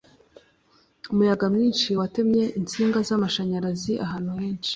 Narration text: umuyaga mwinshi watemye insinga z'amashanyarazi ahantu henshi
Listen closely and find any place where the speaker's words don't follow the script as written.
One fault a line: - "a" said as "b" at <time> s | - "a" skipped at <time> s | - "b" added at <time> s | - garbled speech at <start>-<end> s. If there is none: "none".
none